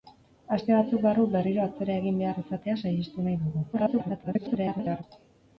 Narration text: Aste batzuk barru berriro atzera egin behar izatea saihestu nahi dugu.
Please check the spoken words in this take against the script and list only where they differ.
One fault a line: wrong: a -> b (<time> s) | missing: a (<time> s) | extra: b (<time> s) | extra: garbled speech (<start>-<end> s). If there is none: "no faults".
extra: garbled speech (3.7-5.0 s)